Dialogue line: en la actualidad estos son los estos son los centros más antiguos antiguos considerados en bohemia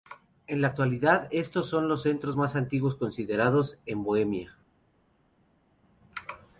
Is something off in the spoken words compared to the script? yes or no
yes